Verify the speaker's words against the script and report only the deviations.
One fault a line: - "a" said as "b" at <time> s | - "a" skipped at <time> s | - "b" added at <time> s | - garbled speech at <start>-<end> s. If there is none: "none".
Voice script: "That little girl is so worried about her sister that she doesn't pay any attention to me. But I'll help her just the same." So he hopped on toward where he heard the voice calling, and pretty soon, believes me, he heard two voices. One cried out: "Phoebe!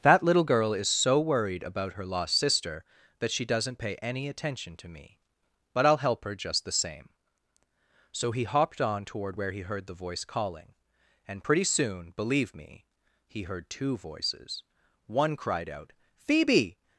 - "lost" added at 2.0 s
- "believes" said as "believe" at 12.1 s